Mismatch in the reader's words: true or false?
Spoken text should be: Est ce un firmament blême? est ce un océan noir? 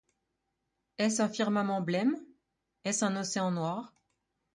false